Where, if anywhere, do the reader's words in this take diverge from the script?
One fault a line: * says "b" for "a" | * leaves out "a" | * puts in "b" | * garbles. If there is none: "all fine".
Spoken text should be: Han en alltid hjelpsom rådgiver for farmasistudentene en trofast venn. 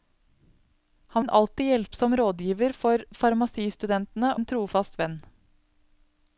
all fine